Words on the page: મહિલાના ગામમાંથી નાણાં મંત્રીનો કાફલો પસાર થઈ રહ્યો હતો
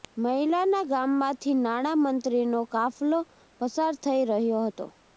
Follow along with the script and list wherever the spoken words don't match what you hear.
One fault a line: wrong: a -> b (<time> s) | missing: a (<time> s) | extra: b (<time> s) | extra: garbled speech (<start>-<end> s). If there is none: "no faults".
no faults